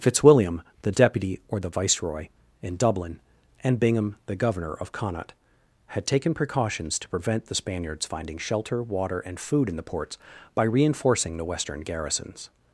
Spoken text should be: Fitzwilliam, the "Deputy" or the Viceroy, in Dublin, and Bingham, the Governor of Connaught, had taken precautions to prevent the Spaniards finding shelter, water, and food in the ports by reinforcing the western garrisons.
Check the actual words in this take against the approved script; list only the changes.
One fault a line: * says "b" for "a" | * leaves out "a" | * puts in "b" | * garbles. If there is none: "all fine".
all fine